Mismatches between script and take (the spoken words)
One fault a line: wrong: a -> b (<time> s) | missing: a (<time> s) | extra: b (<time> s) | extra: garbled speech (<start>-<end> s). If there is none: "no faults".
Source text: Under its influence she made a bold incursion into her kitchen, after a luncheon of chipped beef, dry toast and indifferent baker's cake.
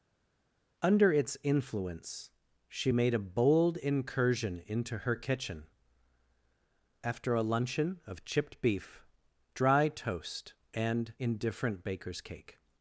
no faults